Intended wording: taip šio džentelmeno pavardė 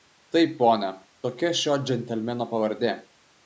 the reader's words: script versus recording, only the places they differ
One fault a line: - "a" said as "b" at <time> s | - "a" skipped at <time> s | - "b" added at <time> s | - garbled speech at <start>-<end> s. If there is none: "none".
- "pone tokia" added at 0.6 s